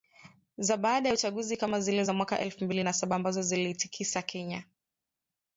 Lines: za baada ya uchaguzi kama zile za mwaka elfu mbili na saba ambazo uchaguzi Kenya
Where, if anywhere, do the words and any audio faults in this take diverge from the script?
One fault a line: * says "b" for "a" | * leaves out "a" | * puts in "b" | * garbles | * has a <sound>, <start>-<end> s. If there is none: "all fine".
* says "ziliitikisa" for "uchaguzi"